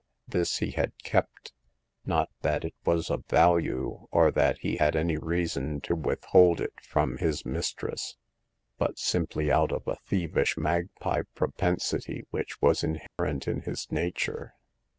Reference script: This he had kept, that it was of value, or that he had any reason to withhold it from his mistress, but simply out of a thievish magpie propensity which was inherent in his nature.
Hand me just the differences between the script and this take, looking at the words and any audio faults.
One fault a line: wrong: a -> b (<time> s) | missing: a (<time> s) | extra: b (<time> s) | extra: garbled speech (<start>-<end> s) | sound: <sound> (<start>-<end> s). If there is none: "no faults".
extra: not (2.1 s)
sound: dropout (13.1-13.2 s)